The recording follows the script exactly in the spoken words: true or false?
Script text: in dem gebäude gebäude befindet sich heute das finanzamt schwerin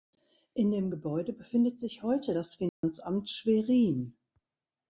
false